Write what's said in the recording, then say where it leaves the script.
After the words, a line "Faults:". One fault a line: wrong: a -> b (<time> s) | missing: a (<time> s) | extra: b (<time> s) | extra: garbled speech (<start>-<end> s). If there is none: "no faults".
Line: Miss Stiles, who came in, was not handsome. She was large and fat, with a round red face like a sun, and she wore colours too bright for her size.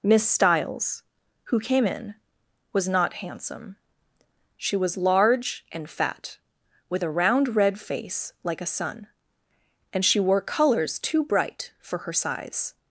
Miss Stiles, who came in, was not handsome. She was large and fat, with a round red face like a sun, and she wore colours too bright for her size.
Faults:
no faults